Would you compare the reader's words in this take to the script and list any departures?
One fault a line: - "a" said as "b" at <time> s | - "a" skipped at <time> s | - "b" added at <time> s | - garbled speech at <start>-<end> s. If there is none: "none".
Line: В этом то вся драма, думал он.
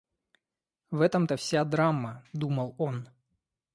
none